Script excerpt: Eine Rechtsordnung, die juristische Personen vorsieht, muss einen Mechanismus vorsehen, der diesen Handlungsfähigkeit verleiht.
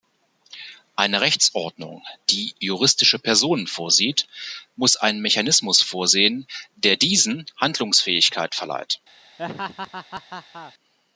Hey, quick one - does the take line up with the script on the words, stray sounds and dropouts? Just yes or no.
no